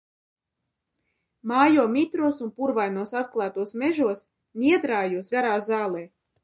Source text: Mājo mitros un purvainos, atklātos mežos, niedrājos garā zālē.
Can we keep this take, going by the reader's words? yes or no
yes